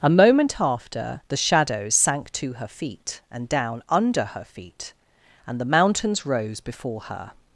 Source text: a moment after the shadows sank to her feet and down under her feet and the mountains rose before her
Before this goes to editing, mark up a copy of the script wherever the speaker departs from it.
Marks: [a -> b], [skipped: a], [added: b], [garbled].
a moment after the shadows sank to her feet and down under her feet and the mountains rose before her